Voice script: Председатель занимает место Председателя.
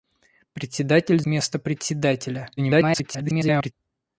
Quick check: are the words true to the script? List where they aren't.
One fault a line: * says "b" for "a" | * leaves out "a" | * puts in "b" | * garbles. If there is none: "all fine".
* leaves out "занимает"
* garbles